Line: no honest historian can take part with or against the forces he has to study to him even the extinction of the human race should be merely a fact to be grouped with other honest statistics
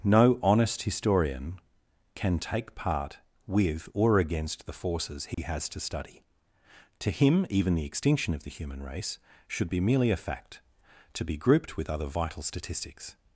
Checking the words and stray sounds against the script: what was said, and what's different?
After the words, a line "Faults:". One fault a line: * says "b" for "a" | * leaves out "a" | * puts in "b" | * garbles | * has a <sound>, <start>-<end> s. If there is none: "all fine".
no honest historian can take part with or against the forces he has to study to him even the extinction of the human race should be merely a fact to be grouped with other vital statistics
Faults:
* has a dropout, 5.3-5.4 s
* says "vital" for "honest"